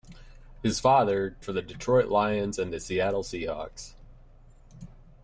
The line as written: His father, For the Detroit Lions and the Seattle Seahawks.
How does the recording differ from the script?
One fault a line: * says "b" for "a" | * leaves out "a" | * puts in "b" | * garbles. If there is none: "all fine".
all fine